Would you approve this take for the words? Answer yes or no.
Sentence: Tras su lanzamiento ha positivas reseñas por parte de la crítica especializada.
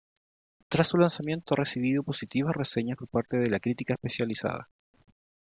no